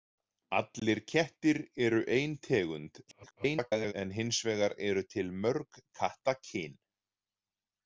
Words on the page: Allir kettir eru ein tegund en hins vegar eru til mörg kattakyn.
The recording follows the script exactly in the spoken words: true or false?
false